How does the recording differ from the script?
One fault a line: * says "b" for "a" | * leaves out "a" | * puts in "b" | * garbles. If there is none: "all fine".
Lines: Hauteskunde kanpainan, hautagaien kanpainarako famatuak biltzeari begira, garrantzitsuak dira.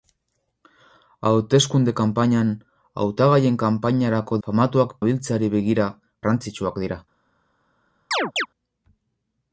all fine